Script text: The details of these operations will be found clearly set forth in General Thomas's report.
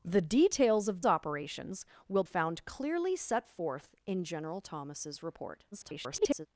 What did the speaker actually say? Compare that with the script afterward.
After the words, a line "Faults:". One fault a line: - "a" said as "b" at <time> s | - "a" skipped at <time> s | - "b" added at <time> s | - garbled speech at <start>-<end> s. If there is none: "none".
The details of operations will found clearly set forth in General Thomas's report. [garbled]
Faults:
- "these" skipped at 1.0 s
- "be" skipped at 2.2 s
- garbled speech at 5.7-6.5 s